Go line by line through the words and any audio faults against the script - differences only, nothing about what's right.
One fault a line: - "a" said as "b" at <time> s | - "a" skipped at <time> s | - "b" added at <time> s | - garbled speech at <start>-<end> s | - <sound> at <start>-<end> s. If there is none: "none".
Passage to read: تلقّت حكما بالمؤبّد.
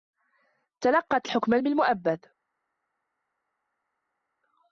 none